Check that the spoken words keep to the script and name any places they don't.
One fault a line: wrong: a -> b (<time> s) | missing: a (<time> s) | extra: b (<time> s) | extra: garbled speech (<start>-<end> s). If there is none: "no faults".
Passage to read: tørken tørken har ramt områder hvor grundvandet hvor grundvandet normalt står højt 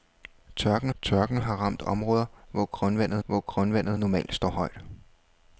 no faults